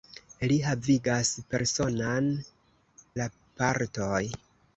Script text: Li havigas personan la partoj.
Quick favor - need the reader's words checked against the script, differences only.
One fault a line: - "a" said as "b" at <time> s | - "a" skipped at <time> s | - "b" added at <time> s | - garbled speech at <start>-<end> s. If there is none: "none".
none